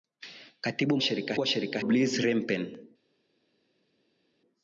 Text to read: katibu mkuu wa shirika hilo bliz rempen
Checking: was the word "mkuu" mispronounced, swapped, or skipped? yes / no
yes